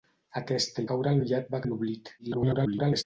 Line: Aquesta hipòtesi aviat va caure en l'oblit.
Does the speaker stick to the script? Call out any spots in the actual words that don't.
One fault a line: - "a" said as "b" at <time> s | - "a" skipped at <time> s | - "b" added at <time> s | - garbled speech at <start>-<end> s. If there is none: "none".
- "hipòtesi" said as "caure" at 0.9 s
- "caure" skipped at 1.6 s
- garbled speech at 2.2-3.0 s